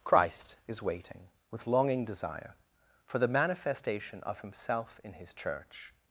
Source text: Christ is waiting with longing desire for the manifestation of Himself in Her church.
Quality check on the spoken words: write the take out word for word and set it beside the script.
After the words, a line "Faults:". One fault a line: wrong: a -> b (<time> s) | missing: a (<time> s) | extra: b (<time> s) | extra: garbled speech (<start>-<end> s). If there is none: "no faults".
Christ is waiting with longing desire for the manifestation of Himself in His church.
Faults:
wrong: Her -> His (5.1 s)